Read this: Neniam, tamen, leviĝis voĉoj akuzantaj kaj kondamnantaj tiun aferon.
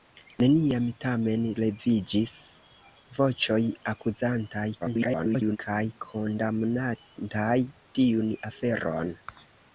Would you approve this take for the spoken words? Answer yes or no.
no